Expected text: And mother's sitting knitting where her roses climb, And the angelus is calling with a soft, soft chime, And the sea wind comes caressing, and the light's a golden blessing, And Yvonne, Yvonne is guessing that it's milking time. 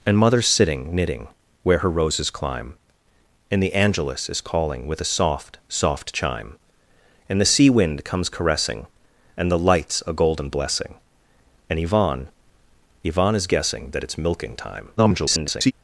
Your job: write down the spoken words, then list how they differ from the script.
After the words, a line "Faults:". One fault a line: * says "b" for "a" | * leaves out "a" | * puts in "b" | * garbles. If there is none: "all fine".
And mother's sitting knitting where her roses climb, And the angelus is calling with a soft, soft chime, And the sea wind comes caressing, and the light's a golden blessing, And Yvonne, Yvonne is guessing that it's milking time. [garbled]
Faults:
* garbles